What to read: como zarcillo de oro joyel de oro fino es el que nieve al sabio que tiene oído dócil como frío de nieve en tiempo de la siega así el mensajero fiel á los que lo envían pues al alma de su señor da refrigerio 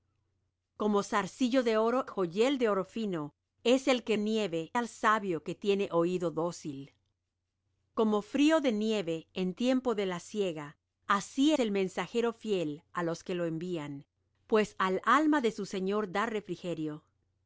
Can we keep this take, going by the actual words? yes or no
yes